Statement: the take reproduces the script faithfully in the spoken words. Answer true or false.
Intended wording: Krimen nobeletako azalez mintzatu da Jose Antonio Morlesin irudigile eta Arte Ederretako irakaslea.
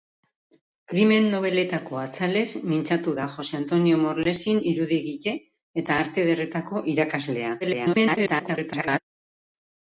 false